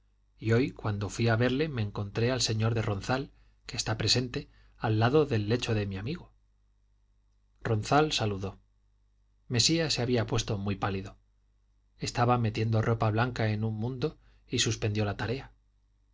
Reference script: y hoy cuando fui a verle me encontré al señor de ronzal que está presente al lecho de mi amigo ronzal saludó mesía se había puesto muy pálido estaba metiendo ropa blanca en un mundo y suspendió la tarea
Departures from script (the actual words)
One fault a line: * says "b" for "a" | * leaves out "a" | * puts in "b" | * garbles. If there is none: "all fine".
* puts in "lado del"